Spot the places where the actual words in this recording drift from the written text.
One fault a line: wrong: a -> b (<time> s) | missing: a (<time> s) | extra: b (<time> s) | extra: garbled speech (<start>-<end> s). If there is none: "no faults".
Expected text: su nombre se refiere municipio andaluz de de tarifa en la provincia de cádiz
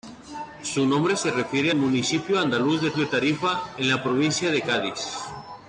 no faults